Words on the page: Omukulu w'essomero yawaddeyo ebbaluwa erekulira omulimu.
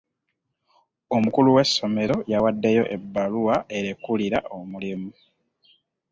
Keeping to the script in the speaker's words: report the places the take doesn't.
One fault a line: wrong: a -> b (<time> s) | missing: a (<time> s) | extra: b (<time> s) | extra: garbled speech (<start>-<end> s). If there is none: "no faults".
no faults